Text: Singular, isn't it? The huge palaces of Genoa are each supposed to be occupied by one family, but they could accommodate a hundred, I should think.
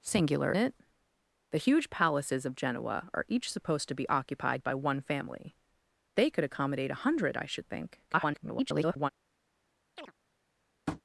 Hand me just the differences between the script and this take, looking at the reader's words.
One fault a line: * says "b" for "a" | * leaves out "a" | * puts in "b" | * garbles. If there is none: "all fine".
* leaves out "isn't"
* leaves out "but"
* garbles